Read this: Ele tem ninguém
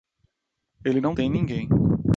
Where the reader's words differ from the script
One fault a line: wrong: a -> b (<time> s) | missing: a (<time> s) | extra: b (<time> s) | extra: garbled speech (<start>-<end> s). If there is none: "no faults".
extra: não (1.0 s)